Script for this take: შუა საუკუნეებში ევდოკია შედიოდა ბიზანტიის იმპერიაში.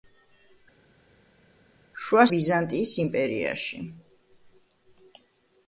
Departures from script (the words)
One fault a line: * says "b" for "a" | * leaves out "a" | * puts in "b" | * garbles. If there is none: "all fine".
* leaves out "საუკუნეებში ევდოკია შედიოდა"